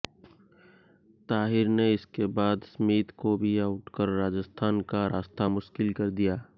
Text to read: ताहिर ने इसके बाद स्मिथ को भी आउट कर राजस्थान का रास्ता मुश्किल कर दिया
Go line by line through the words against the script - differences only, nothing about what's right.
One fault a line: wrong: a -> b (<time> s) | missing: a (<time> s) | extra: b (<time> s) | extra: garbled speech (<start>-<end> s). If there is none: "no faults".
no faults